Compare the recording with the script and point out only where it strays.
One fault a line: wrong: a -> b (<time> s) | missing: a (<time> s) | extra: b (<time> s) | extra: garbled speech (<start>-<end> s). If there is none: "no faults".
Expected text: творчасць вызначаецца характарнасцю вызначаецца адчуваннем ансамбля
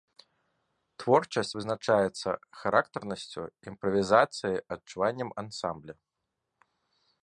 wrong: вызначаецца -> імправізацыяй (3.7 s)